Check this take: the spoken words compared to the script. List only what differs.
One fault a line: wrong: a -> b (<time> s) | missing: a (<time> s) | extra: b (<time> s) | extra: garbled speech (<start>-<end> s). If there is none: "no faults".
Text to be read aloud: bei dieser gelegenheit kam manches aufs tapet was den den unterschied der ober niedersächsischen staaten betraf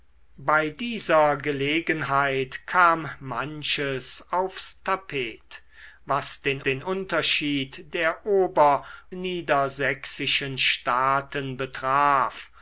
no faults